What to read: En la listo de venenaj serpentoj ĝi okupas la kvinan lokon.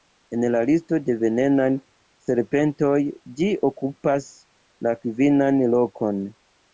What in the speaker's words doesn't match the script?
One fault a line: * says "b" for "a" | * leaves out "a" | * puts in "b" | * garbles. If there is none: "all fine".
all fine